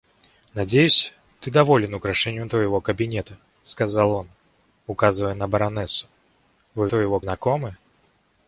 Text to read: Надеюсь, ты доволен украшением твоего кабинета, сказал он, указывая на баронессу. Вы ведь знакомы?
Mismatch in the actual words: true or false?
true